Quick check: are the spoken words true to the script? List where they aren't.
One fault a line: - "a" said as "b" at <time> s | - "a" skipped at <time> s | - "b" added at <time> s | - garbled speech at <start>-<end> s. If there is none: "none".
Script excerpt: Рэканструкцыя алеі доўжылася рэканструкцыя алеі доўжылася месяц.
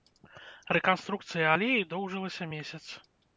- "рэканструкцыя алеі доўжылася" skipped at 2.5 s